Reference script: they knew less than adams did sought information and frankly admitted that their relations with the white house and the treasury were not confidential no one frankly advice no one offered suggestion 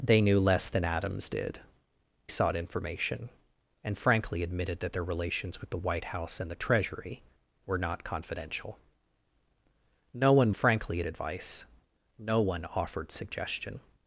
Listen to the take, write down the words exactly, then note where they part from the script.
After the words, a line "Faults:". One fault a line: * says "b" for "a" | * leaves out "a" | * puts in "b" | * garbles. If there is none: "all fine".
they knew less than adams did sought information and frankly admitted that their relations with the white house and the treasury were not confidential no one frankly advice no one offered suggestion
Faults:
all fine